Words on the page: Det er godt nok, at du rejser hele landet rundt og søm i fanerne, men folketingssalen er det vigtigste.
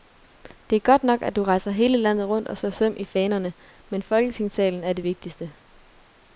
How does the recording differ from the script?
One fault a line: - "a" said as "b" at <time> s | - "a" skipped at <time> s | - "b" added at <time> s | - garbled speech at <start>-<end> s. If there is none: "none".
- "slår" added at 2.6 s